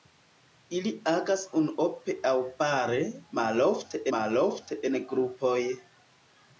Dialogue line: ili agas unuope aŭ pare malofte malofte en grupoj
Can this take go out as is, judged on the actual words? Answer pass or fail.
pass